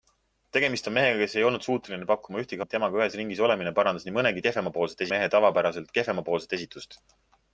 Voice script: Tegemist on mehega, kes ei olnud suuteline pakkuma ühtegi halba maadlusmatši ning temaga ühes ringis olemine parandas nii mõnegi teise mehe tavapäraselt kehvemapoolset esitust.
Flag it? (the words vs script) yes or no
yes